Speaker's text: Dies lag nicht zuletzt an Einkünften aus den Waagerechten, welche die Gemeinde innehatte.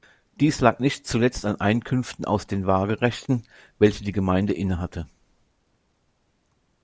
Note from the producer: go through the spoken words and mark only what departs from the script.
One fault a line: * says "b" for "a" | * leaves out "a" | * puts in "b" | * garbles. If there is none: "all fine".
all fine